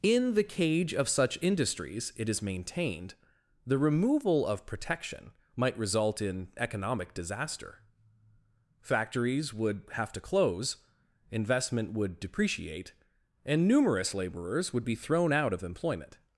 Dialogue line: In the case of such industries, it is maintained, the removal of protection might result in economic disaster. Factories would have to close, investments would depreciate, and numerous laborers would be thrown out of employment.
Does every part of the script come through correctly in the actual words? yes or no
no